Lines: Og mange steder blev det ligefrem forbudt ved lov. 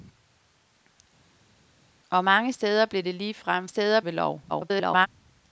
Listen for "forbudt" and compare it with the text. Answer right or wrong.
wrong